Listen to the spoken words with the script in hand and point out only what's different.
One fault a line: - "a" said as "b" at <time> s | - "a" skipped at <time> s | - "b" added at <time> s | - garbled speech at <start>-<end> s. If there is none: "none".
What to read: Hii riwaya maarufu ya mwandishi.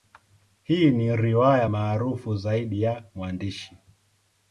- "ni" added at 0.9 s
- "zaidi" added at 2.4 s